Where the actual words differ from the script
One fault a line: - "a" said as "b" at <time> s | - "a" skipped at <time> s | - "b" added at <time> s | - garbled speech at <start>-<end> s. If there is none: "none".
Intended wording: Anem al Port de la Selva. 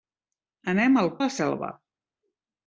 - "Port" skipped at 1.1 s